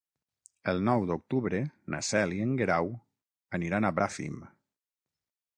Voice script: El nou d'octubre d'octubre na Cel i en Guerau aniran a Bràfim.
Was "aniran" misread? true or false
false